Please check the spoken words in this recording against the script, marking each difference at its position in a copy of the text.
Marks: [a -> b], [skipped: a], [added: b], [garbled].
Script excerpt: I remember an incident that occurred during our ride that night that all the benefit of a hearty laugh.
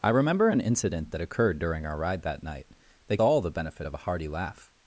I remember an incident that occurred during our ride that night that all the benefit of a hearty laugh.